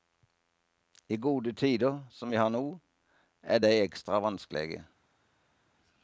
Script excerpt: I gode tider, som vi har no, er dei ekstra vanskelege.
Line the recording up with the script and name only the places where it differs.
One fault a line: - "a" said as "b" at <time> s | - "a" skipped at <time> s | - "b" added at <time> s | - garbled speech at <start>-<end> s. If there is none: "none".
none